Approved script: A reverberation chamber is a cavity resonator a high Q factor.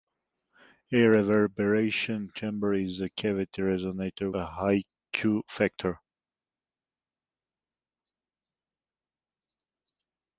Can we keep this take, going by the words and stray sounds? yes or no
yes